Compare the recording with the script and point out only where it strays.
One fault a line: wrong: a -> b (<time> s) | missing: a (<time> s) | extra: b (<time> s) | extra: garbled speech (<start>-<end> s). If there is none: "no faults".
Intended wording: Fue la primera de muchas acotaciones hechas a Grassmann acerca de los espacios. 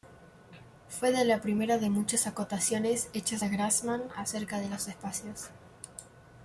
no faults